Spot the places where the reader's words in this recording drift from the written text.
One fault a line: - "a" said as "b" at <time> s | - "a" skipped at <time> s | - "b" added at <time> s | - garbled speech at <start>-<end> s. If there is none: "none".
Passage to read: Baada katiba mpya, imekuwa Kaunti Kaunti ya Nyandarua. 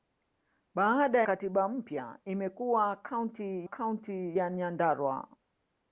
none